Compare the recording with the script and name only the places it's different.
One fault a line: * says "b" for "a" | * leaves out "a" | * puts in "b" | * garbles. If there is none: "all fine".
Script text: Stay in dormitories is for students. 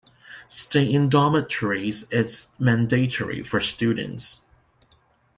* puts in "mandatory"